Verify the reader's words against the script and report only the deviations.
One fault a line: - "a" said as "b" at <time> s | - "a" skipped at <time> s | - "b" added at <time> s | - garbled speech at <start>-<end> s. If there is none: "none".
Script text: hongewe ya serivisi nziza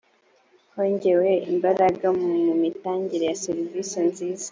- "imbaraga mu mitangire" added at 1.5 s